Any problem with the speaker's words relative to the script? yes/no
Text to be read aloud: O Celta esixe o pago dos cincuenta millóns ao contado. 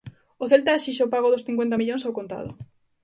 no